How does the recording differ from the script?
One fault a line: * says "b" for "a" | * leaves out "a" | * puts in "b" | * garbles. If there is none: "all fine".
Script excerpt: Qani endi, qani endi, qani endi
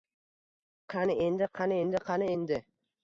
all fine